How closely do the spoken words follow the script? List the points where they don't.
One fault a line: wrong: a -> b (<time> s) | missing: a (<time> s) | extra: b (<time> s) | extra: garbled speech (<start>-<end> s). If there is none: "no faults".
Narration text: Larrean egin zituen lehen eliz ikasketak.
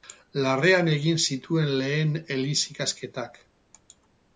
no faults